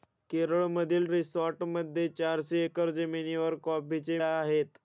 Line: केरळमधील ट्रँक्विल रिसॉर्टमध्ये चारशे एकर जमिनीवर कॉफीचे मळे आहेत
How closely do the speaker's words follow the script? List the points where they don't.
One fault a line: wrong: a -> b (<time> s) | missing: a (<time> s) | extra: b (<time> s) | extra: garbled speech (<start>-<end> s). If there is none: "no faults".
missing: ट्रँक्विल (1.1 s)
missing: मळे (4.2 s)